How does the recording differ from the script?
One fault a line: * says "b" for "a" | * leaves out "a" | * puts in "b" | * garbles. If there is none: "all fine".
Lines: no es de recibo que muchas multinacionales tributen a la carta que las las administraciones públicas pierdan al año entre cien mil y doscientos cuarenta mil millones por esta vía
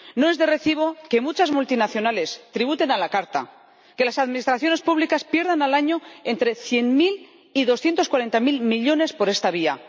* leaves out "las"